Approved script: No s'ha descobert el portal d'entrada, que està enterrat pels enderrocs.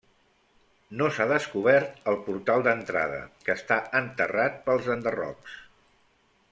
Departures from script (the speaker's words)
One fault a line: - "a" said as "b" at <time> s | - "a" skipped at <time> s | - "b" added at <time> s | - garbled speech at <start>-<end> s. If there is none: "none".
none